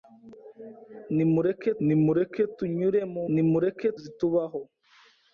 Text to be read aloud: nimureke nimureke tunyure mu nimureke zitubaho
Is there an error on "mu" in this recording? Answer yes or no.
no